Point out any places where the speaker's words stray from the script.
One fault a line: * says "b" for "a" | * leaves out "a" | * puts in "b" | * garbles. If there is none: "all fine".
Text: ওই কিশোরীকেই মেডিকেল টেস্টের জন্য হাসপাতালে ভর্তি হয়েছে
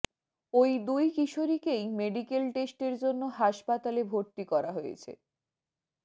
* puts in "দুই"
* puts in "করা"